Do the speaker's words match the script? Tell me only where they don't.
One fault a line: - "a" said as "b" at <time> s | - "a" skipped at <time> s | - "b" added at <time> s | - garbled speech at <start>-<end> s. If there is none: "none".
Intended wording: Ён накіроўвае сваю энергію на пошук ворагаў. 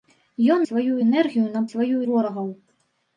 - "накіроўвае" skipped at 0.6 s
- "пошук" said as "сваю" at 1.7 s